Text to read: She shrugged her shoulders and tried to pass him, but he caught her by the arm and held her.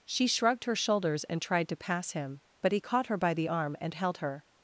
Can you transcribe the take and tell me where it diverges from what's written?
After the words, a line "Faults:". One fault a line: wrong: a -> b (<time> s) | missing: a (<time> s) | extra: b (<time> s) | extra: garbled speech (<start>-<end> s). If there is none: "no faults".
She shrugged her shoulders and tried to pass him, but he caught her by the arm and held her.
Faults:
no faults